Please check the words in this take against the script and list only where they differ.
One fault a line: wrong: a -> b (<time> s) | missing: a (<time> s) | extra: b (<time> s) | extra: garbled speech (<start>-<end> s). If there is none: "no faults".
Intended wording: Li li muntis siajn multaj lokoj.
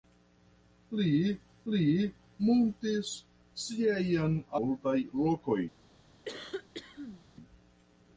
no faults